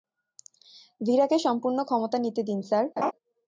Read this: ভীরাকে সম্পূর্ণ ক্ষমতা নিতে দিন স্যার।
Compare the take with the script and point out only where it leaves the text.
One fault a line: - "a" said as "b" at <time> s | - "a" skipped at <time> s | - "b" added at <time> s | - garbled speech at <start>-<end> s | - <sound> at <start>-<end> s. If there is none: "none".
- laugh at 3.0-3.1 s